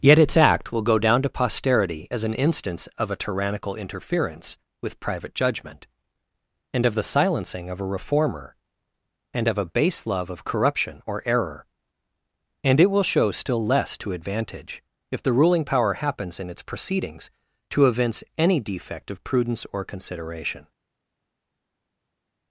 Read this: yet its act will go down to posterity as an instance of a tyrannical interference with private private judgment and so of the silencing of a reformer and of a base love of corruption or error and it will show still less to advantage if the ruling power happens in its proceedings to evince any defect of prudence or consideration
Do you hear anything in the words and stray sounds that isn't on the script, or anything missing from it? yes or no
yes